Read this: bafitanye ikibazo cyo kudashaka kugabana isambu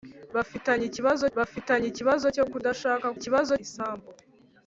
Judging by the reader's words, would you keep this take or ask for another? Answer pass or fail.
fail